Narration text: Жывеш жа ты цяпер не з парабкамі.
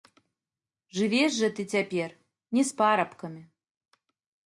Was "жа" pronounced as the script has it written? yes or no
yes